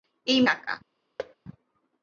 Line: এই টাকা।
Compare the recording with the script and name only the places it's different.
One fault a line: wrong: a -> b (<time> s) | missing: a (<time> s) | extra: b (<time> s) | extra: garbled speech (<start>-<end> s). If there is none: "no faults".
no faults